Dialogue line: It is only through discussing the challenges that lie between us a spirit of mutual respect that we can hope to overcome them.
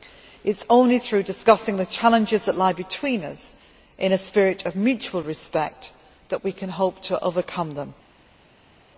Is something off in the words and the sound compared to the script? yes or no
yes